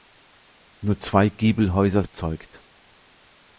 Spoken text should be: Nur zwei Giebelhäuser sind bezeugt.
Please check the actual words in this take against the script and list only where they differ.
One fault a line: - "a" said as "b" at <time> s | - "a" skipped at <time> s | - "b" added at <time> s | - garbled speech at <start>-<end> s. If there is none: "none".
- "sind" skipped at 2.0 s